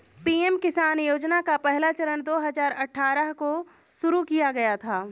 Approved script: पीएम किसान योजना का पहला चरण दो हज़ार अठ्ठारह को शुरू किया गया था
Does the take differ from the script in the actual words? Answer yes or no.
no